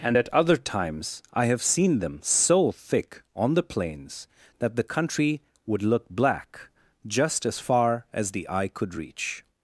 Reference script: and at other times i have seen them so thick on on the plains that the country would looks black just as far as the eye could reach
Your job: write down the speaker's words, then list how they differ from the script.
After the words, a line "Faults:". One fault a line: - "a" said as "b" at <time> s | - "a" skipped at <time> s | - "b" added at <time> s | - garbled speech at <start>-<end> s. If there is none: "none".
and at other times i have seen them so thick on the plains that the country would look black just as far as the eye could reach
Faults:
- "on" skipped at 3.5 s
- "looks" said as "look" at 5.8 s